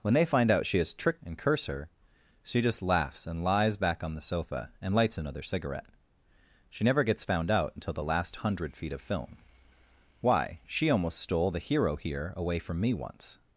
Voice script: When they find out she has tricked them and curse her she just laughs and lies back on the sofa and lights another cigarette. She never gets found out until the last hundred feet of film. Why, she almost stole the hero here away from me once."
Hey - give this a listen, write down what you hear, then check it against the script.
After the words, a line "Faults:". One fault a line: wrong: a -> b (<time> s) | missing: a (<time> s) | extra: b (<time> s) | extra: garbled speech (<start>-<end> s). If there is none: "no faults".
When they find out she has tricked and curse her she just laughs and lies back on the sofa and lights another cigarette. She never gets found out until the last hundred feet of film. Why, she almost stole the hero here away from me once."
Faults:
missing: them (1.2 s)